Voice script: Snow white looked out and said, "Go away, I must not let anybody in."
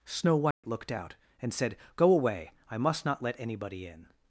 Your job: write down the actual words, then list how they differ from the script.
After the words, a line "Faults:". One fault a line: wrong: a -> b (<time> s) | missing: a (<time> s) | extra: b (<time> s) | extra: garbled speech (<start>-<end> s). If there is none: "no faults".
Snow white looked out and said, "Go away, I must not let anybody in."
Faults:
no faults